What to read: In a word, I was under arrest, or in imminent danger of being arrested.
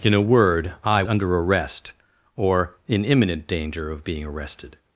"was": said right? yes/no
no